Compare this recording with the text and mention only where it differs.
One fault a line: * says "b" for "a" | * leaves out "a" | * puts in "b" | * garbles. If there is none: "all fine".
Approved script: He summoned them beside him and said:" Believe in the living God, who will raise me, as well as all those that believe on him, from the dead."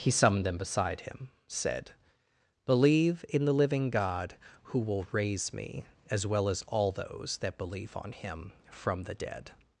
* leaves out "and"